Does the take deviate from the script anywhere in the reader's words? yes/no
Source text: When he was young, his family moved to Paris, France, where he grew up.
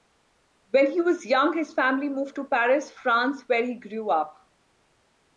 no